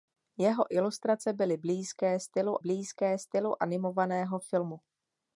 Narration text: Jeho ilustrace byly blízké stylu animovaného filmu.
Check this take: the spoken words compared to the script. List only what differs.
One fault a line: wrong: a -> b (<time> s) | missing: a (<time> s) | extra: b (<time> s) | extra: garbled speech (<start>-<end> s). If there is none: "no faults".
extra: blízké stylu (2.6 s)